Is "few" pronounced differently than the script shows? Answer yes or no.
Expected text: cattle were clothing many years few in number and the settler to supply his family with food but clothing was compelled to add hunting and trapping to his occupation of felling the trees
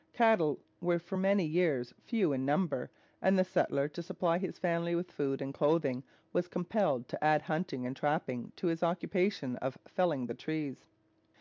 no